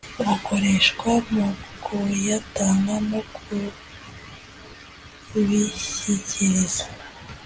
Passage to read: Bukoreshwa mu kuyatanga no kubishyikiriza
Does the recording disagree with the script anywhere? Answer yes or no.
no